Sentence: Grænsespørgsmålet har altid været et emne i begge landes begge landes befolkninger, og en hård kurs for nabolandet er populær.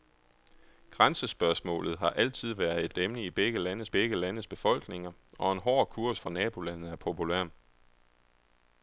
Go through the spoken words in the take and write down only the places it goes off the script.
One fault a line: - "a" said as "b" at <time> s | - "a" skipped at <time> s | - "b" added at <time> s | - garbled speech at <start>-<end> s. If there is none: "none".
none